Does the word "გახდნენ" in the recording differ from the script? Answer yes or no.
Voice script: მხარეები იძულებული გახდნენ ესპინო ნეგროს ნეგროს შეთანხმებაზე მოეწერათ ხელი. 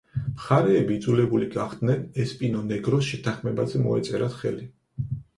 no